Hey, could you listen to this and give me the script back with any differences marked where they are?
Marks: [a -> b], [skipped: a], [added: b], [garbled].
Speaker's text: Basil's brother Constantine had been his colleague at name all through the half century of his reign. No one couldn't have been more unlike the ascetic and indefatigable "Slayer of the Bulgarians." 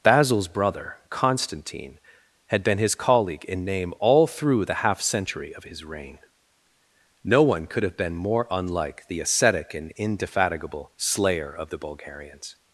Basil's brother Constantine had been his colleague [at -> in] name all through the half century of his reign. No one [couldn't -> could] have been more unlike the ascetic and indefatigable "Slayer of the Bulgarians."